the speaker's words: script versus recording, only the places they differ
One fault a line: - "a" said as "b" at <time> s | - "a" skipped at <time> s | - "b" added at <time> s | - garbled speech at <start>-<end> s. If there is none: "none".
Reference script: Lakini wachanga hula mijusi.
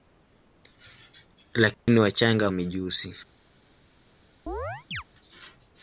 - "hula" skipped at 2.5 s